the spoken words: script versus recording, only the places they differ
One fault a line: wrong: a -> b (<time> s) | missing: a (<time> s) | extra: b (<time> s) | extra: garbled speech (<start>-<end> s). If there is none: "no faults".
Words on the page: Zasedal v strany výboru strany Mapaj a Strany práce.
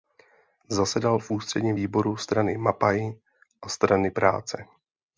wrong: strany -> ústředním (1.3 s)